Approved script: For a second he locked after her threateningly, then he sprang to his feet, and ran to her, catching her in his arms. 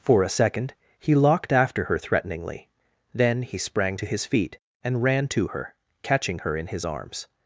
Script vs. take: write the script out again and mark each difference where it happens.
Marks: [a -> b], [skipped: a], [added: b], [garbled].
For a second he locked after her threateningly, then he sprang to his feet, and ran to her, catching her in his arms.